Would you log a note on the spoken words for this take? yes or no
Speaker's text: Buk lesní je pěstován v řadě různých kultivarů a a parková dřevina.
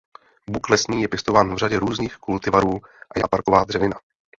no